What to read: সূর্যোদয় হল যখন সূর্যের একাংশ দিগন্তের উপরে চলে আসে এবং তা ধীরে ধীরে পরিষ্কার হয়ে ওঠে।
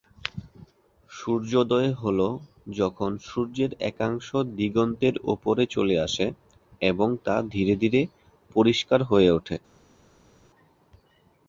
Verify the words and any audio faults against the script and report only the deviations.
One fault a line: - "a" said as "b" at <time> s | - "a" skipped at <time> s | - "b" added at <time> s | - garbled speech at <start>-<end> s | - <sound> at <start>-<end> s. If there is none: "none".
none